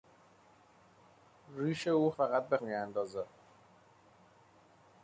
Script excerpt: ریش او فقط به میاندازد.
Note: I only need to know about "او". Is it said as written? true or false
true